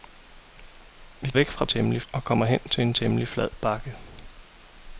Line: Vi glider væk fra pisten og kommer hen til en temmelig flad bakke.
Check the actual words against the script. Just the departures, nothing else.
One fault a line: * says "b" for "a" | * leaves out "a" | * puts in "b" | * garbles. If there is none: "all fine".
* leaves out "glider"
* says "temmelig" for "pisten"